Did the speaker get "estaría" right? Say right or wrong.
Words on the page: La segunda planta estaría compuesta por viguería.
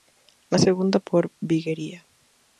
wrong